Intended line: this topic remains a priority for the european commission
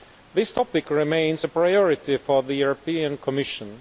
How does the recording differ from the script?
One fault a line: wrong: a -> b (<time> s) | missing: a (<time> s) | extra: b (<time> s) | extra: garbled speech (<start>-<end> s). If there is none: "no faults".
no faults